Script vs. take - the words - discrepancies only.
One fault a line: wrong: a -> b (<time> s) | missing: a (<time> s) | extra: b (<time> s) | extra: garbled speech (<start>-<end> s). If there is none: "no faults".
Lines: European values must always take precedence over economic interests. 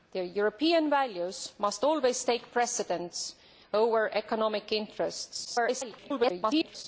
extra: garbled speech (5.4-6.8 s)